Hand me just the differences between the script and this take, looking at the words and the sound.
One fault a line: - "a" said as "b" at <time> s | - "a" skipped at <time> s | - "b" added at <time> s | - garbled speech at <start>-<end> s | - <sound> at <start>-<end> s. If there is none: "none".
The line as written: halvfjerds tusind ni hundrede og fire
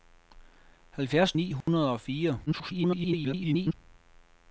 - "tusind" skipped at 1.3 s
- dropout at 1.6-1.7 s
- garbled speech at 2.5-3.7 s